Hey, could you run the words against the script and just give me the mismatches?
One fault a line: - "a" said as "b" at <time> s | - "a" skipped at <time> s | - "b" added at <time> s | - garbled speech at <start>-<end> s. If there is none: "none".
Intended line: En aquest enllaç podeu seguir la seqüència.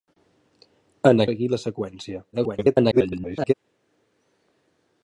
- "aquest enllaç podeu" skipped at 1.2 s
- garbled speech at 2.3-3.5 s